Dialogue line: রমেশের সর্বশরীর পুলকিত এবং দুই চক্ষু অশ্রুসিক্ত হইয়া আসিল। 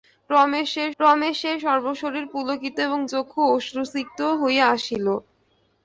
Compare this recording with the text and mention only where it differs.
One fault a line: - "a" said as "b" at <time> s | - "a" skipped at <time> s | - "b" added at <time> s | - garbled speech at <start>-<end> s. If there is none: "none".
- "রমেশের" added at 1.0 s
- "দুই" skipped at 3.0 s